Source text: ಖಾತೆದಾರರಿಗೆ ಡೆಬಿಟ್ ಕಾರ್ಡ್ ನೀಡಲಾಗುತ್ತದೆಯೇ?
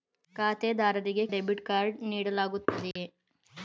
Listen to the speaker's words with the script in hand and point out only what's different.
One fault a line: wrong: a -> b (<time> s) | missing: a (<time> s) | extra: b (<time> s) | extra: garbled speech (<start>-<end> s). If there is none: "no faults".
no faults